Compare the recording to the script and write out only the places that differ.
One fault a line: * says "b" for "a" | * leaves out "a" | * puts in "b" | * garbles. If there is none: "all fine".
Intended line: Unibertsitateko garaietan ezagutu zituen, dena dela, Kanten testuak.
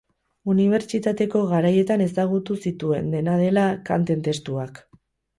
all fine